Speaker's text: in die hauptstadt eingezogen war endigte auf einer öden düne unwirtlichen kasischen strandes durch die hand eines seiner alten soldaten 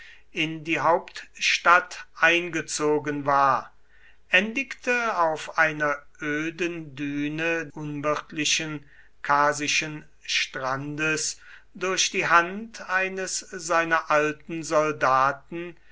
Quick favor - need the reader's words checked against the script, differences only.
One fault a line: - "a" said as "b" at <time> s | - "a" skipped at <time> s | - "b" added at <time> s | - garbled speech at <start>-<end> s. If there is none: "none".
none